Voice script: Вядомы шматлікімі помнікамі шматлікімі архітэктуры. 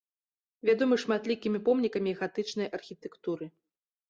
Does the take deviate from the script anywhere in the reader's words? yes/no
yes